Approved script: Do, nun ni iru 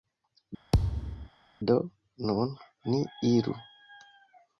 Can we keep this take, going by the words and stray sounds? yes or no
no